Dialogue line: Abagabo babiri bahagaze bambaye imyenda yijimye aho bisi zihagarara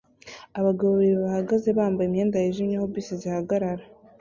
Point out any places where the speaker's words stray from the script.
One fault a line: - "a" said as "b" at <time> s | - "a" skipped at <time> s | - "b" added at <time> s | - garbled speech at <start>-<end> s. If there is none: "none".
none